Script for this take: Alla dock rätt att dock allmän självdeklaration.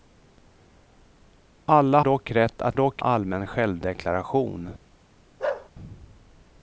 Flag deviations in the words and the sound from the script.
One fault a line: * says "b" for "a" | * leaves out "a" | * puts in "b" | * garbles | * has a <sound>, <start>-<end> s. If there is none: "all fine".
* has a bark, 5.4-5.7 s